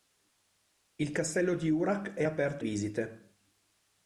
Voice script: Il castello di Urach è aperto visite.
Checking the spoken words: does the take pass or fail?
pass